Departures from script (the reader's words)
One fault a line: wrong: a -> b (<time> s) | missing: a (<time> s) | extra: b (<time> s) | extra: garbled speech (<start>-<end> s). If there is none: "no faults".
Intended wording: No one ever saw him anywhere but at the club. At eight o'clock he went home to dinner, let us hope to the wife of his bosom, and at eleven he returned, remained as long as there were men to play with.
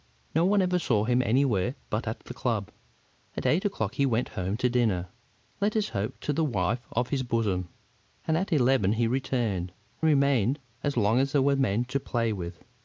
no faults